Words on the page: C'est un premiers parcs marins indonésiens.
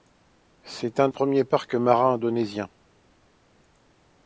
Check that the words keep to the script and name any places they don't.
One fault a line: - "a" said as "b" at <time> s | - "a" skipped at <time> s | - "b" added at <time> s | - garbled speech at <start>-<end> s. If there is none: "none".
none